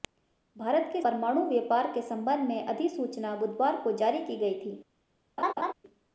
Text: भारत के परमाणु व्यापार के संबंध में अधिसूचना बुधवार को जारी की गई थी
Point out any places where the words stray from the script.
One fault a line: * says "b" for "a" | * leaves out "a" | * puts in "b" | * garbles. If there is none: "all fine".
all fine